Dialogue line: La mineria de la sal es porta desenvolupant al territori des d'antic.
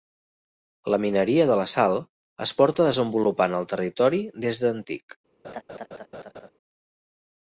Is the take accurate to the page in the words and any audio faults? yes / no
no